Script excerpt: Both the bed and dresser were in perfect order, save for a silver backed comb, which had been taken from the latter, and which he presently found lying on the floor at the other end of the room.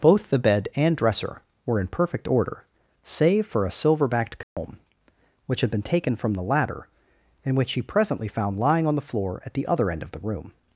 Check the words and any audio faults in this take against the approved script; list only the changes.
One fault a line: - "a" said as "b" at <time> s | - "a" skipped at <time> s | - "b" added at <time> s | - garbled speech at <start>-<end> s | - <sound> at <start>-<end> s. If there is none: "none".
- dropout at 4.4-4.6 s